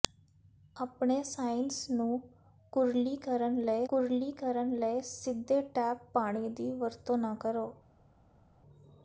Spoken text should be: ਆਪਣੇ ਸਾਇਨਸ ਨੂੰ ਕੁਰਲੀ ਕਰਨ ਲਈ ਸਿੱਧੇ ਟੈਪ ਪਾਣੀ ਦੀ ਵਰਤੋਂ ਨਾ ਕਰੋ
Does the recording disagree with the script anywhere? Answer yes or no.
yes